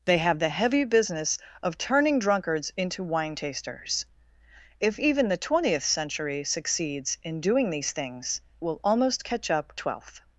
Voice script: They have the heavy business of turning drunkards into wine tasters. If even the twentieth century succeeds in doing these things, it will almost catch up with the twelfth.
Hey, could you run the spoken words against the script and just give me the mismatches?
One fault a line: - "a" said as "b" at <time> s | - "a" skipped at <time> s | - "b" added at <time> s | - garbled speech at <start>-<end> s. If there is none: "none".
- "it" skipped at 8.4 s
- "with the" skipped at 9.7 s